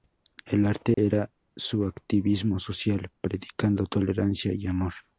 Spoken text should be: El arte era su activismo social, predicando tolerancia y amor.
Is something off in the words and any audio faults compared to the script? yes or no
yes